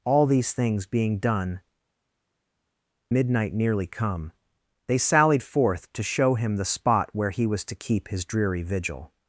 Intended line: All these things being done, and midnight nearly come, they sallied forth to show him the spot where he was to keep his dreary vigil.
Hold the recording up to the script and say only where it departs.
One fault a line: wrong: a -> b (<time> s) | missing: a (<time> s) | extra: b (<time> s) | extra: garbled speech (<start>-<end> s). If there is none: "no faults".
missing: and (1.6 s)